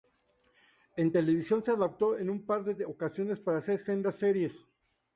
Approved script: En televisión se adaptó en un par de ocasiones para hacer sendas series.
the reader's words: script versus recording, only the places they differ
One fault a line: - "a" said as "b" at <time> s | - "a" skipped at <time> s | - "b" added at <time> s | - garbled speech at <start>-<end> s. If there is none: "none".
none